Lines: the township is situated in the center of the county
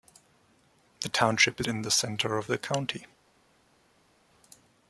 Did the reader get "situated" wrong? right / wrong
wrong